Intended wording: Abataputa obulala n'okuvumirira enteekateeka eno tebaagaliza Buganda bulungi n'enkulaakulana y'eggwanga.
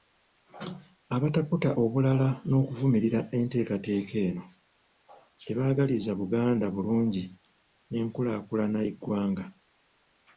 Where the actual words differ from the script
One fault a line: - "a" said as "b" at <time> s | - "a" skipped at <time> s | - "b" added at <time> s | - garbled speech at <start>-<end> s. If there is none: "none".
none